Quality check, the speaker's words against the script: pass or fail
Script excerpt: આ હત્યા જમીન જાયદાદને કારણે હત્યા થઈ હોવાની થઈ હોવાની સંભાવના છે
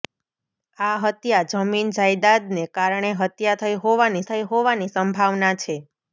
pass